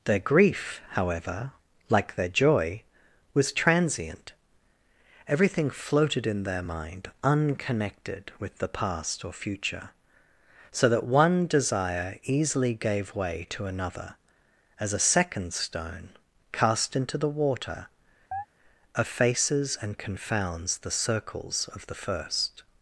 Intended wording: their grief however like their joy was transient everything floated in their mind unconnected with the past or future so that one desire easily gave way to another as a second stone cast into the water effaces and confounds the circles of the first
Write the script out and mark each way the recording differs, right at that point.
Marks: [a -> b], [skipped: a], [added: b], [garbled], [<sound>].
their grief however like their joy was transient everything floated in their mind unconnected with the past or future so that one desire easily gave way to another as a second stone cast into the water [chirp] effaces and confounds the circles of the first